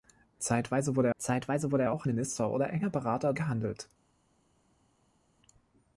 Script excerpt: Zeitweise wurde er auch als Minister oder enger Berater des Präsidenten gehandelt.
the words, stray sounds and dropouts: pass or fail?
fail